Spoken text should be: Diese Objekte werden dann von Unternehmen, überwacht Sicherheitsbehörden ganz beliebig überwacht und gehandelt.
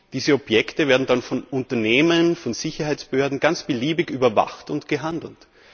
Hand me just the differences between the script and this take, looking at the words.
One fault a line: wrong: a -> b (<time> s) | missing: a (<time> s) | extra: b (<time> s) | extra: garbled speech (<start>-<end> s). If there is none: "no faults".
wrong: überwacht -> von (2.4 s)